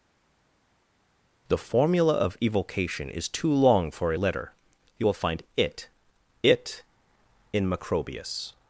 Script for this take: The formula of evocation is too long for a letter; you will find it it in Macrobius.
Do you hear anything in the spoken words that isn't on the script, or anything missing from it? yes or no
no